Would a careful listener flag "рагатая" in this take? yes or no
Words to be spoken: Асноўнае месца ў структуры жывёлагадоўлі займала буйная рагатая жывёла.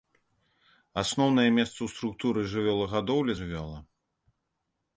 yes